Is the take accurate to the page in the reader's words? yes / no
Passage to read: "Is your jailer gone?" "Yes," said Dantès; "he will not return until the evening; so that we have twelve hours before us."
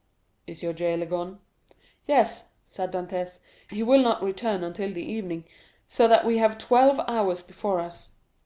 yes